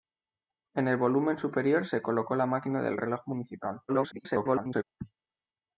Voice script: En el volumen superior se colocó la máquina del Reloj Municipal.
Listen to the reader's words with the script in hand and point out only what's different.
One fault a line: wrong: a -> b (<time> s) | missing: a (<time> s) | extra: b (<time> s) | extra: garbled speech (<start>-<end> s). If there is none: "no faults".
extra: garbled speech (3.9-4.8 s)